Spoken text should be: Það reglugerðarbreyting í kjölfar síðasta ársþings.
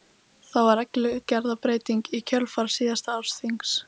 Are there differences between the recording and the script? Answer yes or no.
yes